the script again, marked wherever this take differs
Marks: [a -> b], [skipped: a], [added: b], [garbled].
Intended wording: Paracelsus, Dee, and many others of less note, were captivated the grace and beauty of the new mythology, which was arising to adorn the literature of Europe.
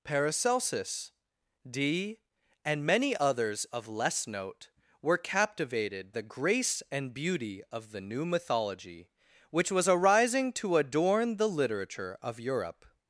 Paracelsus, Dee, and many others of less note, were captivated the grace and beauty of the new mythology, which was arising to adorn the literature of Europe.